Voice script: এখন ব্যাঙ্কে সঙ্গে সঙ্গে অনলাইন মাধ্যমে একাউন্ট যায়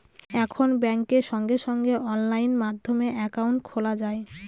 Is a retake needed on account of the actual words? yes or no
yes